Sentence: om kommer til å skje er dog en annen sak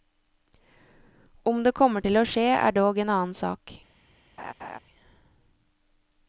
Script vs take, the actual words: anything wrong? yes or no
yes